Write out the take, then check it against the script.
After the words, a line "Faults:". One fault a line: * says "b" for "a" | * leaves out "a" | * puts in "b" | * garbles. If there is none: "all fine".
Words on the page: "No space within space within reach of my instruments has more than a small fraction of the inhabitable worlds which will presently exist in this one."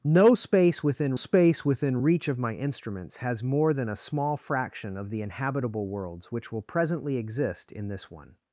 "No space within space within reach of my instruments has more than a small fraction of the inhabitable worlds which will presently exist in this one."
Faults:
all fine